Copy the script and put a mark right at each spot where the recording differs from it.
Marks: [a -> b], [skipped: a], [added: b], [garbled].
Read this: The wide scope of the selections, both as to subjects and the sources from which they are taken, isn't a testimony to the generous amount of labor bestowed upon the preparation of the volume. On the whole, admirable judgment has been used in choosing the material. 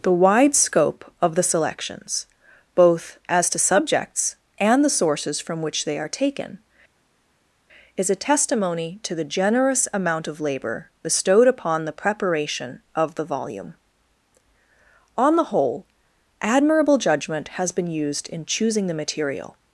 The wide scope of the selections, both as to subjects and the sources from which they are taken, [isn't -> is] a testimony to the generous amount of labor bestowed upon the preparation of the volume. On the whole, admirable judgment has been used in choosing the material.